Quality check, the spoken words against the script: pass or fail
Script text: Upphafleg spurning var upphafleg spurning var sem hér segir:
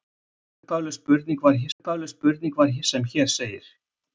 pass